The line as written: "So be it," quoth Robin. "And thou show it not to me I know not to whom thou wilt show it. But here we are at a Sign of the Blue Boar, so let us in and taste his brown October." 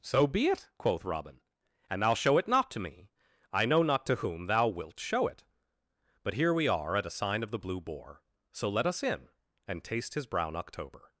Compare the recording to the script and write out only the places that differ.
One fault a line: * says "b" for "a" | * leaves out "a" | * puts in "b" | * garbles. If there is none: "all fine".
all fine